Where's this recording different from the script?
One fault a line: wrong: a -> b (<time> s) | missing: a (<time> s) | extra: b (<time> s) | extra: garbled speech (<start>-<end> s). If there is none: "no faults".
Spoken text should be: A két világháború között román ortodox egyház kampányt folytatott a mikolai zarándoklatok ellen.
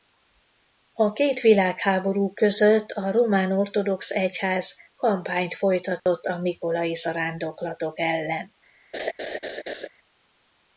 extra: a (2.9 s)